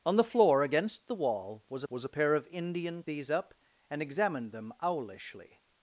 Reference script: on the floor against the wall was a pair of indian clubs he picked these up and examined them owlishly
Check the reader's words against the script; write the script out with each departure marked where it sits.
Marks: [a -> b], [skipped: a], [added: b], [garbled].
on the floor against the wall was [added: was] a pair of indian [skipped: clubs he picked] these up and examined them owlishly